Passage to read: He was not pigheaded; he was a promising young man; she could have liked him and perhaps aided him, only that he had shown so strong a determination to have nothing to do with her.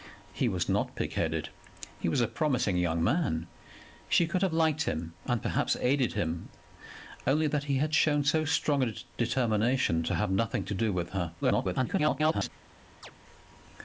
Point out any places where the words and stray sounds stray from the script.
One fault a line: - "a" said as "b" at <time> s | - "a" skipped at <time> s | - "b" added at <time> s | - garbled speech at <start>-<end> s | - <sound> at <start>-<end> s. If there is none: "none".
- garbled speech at 11.4-12.5 s
- chirp at 13.0-13.1 s